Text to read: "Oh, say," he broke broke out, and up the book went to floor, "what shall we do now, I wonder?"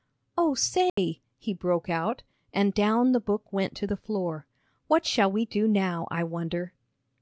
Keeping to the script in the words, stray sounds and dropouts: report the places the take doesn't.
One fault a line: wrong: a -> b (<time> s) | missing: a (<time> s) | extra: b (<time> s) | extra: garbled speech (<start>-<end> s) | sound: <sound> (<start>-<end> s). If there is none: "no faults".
sound: dropout (0.9-1.0 s)
missing: broke (1.9 s)
wrong: up -> down (2.7 s)
extra: the (3.8 s)